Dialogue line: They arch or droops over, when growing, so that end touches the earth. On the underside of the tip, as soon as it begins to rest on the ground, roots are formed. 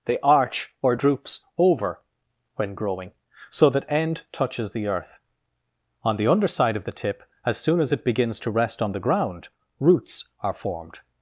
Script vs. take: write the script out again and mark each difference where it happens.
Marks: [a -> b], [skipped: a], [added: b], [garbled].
They arch or droops over, when growing, so that end touches the earth. On the underside of the tip, as soon as it begins to rest on the ground, roots are formed.